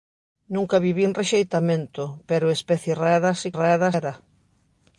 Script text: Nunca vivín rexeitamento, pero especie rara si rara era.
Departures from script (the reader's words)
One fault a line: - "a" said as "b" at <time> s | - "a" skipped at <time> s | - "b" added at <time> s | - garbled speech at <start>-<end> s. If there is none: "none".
none